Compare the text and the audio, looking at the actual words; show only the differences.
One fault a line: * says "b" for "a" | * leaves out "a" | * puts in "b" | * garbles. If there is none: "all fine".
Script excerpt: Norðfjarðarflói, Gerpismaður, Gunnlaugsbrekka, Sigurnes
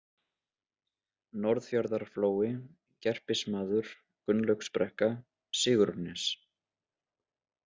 all fine